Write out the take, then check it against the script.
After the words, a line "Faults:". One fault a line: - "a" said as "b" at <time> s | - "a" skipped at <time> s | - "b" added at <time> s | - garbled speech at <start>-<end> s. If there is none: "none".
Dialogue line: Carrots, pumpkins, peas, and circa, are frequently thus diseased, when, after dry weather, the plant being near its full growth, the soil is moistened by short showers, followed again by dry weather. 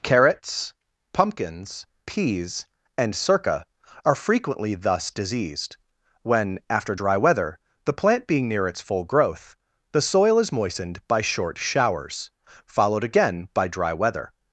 Carrots, pumpkins, peas, and circa, are frequently thus diseased, when, after dry weather, the plant being near its full growth, the soil is moistened by short showers, followed again by dry weather.
Faults:
none